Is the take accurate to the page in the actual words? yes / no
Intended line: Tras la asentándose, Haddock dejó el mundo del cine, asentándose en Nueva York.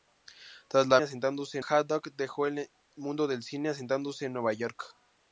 yes